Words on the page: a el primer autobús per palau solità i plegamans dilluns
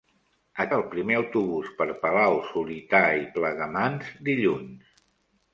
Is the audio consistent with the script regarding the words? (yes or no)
yes